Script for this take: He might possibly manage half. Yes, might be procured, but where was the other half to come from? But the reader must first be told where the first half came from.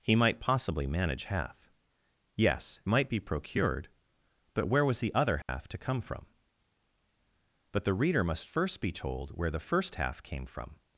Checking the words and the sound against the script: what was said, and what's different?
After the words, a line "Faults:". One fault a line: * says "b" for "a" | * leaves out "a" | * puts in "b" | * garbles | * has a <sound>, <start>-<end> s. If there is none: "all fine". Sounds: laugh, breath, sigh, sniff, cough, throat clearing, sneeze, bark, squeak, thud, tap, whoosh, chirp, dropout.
He might possibly manage half. Yes, might be procured, but where was the other half to come from? But the reader must first be told where the first half came from.
Faults:
* has a dropout, 5.4-5.5 s